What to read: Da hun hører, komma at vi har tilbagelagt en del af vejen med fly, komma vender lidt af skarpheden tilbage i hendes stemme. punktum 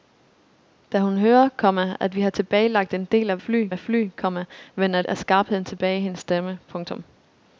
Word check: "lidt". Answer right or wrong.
wrong